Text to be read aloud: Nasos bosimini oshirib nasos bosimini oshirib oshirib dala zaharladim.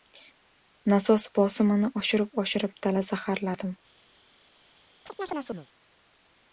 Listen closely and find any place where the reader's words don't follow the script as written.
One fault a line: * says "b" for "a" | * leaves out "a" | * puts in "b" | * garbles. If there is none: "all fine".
* leaves out "nasos bosimini oshirib"